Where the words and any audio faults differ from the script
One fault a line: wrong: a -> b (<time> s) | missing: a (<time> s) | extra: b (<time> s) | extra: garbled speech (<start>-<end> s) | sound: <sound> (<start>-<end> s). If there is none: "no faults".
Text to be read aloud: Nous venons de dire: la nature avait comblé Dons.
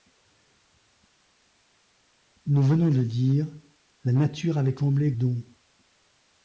no faults